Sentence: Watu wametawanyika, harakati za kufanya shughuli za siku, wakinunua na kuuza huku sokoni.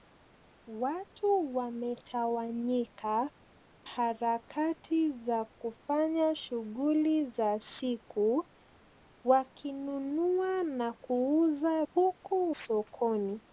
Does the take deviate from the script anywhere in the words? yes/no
no